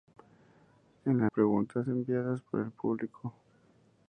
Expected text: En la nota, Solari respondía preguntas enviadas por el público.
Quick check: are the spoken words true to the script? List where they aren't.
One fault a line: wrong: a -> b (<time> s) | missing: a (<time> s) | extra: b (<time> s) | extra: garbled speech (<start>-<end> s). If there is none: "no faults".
missing: nota Solari respondía (1.3 s)